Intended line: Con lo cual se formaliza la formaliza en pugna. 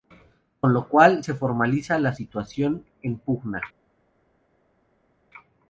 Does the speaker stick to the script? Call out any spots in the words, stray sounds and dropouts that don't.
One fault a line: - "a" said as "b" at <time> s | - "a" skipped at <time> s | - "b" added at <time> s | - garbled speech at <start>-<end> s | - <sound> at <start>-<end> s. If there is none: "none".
- "formaliza" said as "situación" at 2.1 s